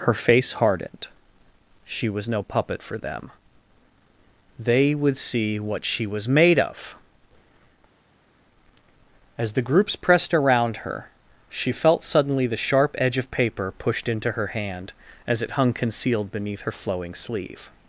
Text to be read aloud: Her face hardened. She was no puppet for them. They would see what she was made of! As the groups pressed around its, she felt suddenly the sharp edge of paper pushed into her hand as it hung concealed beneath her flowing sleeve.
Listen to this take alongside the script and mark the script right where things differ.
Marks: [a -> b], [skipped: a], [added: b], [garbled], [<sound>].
Her face hardened. She was no puppet for them. They would see what she was made of! As the groups pressed around [its, -> her] she felt suddenly the sharp edge of paper pushed into her hand as it hung concealed beneath her flowing sleeve.